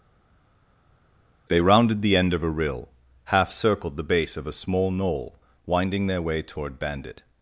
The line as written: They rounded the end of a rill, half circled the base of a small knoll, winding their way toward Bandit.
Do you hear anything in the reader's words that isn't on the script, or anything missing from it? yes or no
no